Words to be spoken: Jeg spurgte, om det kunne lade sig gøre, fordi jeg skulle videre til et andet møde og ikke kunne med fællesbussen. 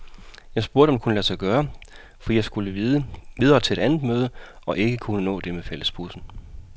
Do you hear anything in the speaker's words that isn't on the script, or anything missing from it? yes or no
yes